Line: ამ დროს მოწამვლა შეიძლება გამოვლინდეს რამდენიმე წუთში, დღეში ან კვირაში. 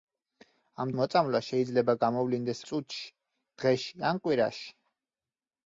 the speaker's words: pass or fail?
fail